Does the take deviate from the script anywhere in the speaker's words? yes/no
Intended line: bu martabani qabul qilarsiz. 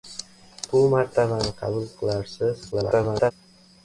yes